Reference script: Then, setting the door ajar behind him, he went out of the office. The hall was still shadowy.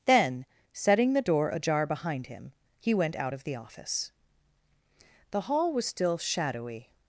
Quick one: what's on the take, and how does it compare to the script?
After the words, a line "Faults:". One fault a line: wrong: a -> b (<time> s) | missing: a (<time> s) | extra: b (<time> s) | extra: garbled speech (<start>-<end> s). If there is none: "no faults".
Then, setting the door ajar behind him, he went out of the office. The hall was still shadowy.
Faults:
no faults